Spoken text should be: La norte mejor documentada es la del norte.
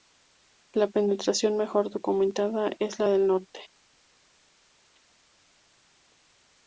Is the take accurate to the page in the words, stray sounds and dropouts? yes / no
no